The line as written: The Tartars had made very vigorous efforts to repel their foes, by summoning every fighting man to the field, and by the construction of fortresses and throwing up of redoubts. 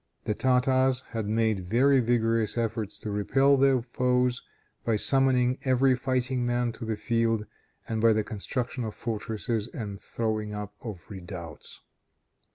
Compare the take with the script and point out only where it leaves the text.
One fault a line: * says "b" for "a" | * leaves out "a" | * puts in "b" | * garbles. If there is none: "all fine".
all fine